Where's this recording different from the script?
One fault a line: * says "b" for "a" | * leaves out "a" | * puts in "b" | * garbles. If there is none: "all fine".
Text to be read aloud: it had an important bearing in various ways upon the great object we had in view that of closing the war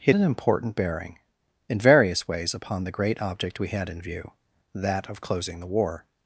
* leaves out "had"